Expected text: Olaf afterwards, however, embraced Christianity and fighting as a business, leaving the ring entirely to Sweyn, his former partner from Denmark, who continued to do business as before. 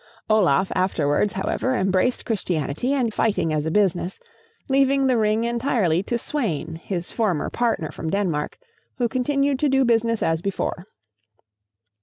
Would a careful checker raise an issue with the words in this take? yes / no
no